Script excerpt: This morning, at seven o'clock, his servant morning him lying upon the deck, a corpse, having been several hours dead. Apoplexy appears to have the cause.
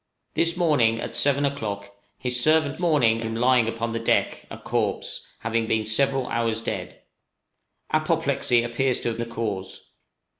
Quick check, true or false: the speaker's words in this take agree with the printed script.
true